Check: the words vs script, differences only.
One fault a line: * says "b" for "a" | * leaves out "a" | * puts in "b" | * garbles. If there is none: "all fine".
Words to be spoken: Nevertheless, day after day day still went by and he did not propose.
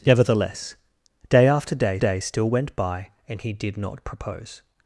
all fine